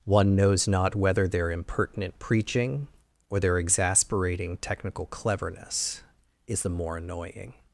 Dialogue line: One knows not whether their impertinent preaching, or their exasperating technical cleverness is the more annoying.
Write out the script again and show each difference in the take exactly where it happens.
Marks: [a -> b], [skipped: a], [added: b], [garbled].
One knows not whether their impertinent preaching, or their exasperating technical cleverness is the more annoying.